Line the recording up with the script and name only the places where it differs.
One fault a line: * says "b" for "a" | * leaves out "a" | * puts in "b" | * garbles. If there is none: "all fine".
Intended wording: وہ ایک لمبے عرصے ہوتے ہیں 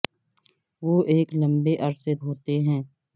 all fine